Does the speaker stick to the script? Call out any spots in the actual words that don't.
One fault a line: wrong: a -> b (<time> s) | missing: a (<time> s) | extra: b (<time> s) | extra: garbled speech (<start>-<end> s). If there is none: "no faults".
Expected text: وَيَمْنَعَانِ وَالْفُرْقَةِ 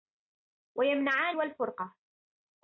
no faults